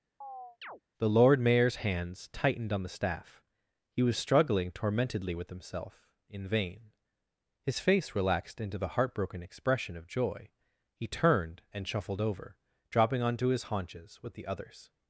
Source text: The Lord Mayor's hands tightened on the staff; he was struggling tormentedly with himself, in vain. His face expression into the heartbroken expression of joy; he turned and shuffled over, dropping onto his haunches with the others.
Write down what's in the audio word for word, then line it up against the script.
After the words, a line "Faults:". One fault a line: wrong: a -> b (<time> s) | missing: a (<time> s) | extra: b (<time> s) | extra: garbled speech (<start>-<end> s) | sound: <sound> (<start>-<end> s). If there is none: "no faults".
The Lord Mayor's hands tightened on the staff; he was struggling tormentedly with himself, in vain. His face relaxed into the heartbroken expression of joy; he turned and shuffled over, dropping onto his haunches with the others.
Faults:
sound: chirp (0.2-0.8 s)
wrong: expression -> relaxed (8.1 s)